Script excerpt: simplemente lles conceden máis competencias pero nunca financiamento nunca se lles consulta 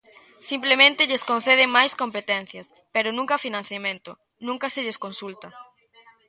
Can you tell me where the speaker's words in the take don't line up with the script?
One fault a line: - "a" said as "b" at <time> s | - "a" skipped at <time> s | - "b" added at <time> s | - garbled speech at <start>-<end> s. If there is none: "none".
none